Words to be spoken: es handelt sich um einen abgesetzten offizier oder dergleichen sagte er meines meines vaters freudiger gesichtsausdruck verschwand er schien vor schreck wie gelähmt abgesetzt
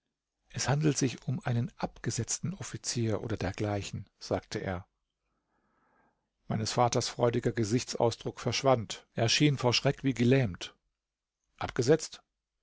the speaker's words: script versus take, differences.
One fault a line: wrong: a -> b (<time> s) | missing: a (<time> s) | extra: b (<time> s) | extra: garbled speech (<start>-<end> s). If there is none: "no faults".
missing: meines (6.7 s)